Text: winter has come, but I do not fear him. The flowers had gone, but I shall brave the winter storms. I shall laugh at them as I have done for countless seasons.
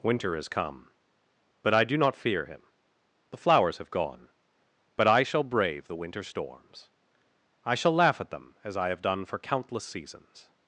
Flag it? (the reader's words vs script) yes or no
yes